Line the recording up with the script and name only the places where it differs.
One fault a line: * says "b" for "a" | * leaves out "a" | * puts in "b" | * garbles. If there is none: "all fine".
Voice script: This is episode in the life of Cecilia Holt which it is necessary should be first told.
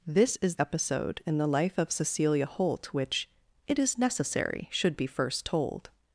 all fine